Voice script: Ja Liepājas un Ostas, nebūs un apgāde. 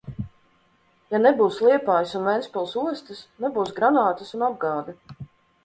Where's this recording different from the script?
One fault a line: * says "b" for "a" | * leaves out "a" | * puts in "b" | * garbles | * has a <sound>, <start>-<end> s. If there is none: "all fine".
* puts in "nebūs"
* puts in "Ventspils"
* puts in "granātas"